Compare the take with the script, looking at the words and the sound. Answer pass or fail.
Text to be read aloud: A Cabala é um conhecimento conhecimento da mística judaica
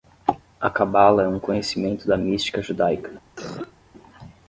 fail